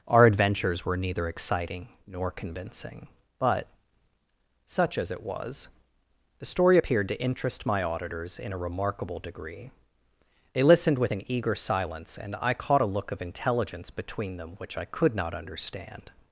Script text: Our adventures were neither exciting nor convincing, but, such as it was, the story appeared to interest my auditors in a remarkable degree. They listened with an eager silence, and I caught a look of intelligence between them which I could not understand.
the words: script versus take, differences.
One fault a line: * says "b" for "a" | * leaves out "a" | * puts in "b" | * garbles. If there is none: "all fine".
all fine